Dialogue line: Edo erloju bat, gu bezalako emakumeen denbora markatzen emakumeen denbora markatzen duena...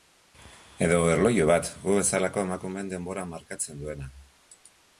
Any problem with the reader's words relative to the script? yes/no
yes